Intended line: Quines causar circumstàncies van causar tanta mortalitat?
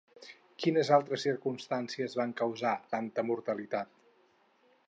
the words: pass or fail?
fail